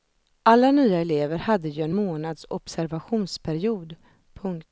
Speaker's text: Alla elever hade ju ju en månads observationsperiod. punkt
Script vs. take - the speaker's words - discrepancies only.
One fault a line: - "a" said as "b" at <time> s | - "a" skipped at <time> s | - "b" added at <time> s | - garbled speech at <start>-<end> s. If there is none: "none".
- "nya" added at 0.7 s
- "ju" skipped at 1.8 s